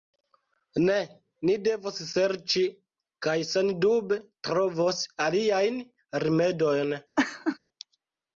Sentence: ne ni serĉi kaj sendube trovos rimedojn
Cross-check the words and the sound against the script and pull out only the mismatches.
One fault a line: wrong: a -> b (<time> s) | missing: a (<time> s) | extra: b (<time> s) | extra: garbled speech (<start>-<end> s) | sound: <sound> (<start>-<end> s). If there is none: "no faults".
extra: devos (1.7 s)
extra: aliajn (5.3 s)
sound: laugh (7.2-7.6 s)